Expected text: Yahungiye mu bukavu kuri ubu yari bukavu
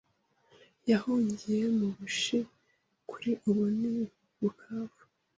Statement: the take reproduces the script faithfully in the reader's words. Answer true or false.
false